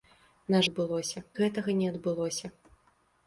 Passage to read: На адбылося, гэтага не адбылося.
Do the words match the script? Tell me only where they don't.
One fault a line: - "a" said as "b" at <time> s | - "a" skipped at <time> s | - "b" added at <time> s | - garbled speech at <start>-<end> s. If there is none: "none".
none